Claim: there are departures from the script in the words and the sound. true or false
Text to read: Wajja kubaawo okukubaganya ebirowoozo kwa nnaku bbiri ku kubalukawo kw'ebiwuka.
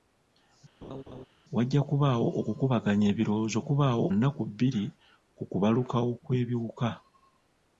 true